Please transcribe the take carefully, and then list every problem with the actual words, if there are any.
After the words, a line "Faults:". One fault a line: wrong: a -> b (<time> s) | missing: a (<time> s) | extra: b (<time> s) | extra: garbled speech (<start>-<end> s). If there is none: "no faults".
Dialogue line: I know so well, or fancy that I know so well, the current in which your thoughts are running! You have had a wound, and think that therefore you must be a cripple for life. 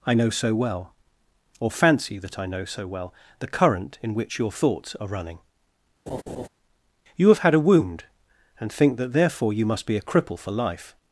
I know so well, or fancy that I know so well, the current in which your thoughts are running! You have had a wound, and think that therefore you must be a cripple for life.
Faults:
no faults